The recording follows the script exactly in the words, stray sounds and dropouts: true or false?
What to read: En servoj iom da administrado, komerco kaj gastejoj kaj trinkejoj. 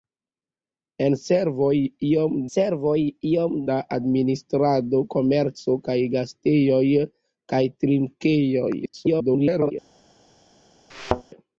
false